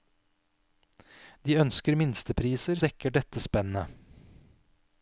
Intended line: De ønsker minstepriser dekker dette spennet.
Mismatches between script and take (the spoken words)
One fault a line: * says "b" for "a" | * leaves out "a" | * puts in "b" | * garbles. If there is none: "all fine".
all fine